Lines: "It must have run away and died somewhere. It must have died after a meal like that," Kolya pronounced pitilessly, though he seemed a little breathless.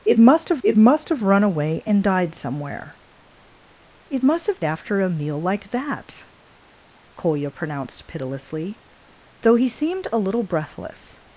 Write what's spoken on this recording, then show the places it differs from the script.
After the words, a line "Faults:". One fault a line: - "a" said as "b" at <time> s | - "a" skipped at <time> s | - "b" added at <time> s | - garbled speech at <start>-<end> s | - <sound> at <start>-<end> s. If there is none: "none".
"It must have it must have run away and died somewhere. It must have after a meal like that," Kolya pronounced pitilessly, though he seemed a little breathless.
Faults:
- "it must have" added at 0.6 s
- "died" skipped at 4.6 s